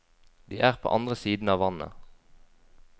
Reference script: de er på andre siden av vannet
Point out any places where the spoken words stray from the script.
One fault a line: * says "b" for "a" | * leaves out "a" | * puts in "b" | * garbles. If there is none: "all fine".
all fine